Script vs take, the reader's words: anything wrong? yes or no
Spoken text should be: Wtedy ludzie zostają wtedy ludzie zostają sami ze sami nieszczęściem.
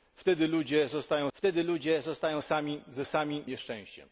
no